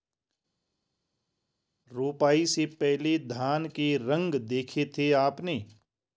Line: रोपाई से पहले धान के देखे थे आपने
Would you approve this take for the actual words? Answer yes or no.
no